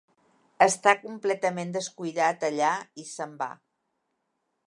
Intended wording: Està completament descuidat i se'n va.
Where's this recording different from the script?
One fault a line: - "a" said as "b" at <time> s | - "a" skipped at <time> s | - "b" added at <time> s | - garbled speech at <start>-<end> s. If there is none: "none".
- "allà" added at 2.5 s